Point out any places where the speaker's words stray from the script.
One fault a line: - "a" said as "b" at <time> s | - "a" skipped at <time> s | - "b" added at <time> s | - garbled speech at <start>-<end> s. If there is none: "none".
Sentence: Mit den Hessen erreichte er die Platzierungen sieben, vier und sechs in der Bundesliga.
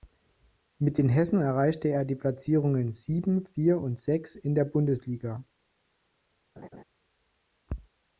none